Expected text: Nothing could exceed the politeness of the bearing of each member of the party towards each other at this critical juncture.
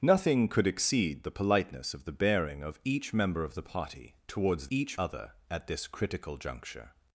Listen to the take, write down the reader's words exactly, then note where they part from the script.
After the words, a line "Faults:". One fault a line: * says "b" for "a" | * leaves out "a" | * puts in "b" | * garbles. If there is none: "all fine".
Nothing could exceed the politeness of the bearing of each member of the party towards each other at this critical juncture.
Faults:
all fine